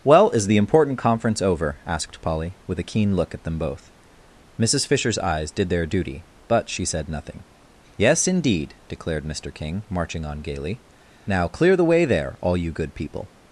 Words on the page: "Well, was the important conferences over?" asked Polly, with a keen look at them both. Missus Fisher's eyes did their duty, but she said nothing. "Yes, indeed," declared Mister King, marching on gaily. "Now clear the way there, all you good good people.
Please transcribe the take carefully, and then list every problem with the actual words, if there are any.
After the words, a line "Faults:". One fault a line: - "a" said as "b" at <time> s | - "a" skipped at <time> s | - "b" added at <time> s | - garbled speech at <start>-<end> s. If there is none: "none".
"Well, is the important conference over?" asked Polly, with a keen look at them both. Missus Fisher's eyes did their duty, but she said nothing. "Yes, indeed," declared Mister King, marching on gaily. "Now clear the way there, all you good people.
Faults:
- "was" said as "is" at 0.3 s
- "conferences" said as "conference" at 1.0 s
- "good" skipped at 12.9 s